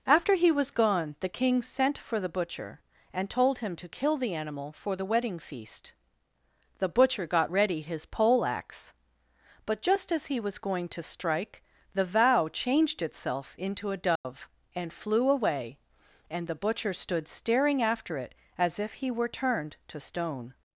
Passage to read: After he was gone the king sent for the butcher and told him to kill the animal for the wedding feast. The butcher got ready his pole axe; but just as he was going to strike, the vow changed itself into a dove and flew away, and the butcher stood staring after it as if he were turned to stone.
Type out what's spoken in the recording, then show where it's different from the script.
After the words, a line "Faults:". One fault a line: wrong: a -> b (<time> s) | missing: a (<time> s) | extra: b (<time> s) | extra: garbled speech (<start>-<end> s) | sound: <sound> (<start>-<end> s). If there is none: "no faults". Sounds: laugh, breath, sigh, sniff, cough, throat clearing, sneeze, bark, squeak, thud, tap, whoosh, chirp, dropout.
After he was gone the king sent for the butcher and told him to kill the animal for the wedding feast. The butcher got ready his pole axe; but just as he was going to strike, the vow changed itself into a dove and flew away, and the butcher stood staring after it as if he were turned to stone.
Faults:
sound: dropout (14.2-14.2 s)